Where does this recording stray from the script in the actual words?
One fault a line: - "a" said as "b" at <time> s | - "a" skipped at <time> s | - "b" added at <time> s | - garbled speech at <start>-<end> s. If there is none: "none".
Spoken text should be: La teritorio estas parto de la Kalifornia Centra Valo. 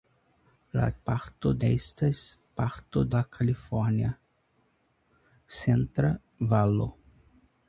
- "teritorio" said as "parto" at 1.1 s
- "de" skipped at 3.0 s